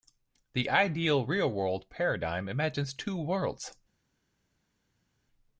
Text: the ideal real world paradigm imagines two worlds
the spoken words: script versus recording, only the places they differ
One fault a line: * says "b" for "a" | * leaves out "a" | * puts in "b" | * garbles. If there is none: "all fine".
all fine